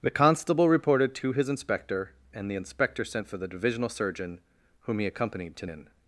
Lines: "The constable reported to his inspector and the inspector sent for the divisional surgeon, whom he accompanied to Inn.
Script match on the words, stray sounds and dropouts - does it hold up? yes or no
yes